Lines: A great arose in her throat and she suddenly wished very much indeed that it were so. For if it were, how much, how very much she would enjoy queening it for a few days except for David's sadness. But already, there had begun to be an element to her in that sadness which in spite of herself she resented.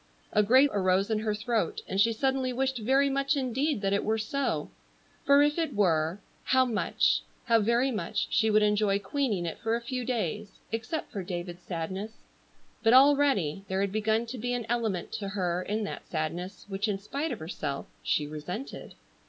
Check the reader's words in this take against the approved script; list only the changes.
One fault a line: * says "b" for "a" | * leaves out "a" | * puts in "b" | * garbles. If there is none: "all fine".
all fine